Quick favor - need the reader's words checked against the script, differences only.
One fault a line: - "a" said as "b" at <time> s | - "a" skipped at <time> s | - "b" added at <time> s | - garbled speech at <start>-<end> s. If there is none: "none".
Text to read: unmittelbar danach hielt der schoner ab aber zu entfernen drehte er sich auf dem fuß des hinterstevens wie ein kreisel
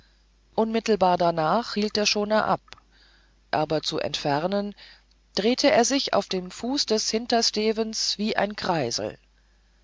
none